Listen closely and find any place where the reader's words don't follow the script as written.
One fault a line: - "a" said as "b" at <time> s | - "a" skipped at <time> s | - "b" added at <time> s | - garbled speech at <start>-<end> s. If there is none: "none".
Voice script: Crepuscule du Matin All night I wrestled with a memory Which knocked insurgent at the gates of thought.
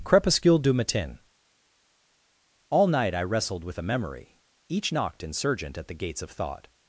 - "Which" said as "Each" at 4.7 s